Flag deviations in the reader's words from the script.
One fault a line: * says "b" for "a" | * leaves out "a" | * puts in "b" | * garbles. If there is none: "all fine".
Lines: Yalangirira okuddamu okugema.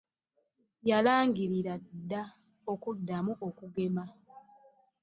* puts in "dda"